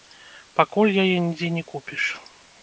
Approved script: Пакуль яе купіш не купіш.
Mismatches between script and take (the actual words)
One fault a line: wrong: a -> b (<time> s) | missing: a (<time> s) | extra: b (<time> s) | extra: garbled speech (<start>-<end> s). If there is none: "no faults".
wrong: купіш -> нідзе (1.3 s)